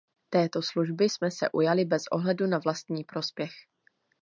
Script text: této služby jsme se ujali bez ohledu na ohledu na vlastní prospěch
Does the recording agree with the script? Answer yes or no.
no